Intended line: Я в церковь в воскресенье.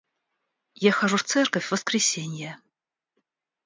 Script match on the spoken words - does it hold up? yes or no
no